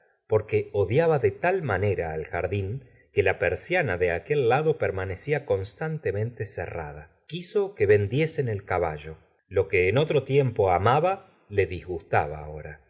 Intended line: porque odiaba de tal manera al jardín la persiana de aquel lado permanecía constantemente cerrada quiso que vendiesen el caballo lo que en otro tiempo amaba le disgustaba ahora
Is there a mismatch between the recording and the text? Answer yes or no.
yes